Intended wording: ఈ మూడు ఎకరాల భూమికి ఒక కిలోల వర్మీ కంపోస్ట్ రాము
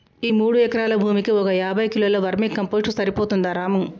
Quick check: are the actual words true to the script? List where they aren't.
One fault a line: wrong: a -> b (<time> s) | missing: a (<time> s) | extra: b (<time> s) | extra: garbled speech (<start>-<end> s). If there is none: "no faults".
extra: యాభై (1.6 s)
extra: సరిపోతుందా (2.9 s)